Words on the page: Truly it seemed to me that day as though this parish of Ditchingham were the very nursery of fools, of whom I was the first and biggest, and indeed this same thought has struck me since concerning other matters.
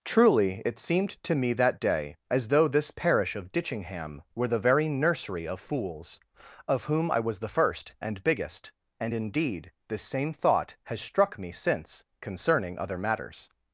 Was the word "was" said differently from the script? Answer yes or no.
no